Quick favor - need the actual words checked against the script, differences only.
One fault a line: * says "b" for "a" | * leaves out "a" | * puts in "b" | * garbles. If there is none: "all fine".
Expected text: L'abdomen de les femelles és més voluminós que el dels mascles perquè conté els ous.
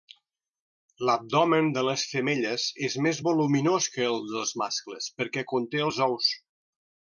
all fine